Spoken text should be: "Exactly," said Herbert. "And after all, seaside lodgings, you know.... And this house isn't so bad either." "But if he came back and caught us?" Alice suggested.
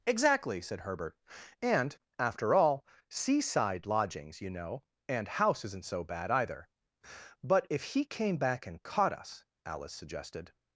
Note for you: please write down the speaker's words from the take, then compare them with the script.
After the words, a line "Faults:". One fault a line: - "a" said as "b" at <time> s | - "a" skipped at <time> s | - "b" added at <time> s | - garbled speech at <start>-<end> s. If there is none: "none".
"Exactly," said Herbert. "And after all, seaside lodgings, you know.... And house isn't so bad either." "But if he came back and caught us?" Alice suggested.
Faults:
- "this" skipped at 5.3 s